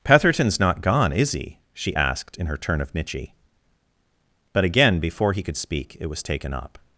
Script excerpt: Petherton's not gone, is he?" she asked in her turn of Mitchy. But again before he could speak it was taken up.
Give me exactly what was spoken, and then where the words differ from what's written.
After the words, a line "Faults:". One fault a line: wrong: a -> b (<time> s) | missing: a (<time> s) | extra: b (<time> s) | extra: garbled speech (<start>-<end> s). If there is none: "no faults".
Petherton's not gone, is he?" she asked in her turn of Mitchy. But again before he could speak it was taken up.
Faults:
no faults